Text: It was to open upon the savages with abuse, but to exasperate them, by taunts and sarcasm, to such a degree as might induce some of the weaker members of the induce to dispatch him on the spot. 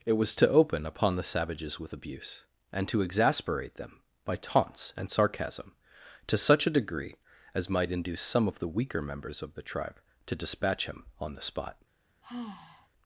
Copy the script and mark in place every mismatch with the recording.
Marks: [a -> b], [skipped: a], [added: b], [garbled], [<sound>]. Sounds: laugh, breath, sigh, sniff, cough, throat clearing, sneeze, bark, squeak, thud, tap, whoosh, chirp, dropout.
It was to open upon the savages with abuse, [but -> and] to exasperate them, by taunts and sarcasm, to such a degree as might induce some of the weaker members of the [induce -> tribe] to dispatch him on the spot. [sigh]